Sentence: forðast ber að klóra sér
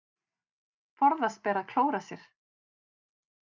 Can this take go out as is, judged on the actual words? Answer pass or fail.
pass